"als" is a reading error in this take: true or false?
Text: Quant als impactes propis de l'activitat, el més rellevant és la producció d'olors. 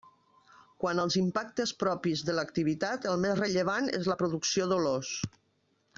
false